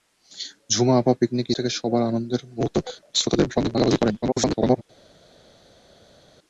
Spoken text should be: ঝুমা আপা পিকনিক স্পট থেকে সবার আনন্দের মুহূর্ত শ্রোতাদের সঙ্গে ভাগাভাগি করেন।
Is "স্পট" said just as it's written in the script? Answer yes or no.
no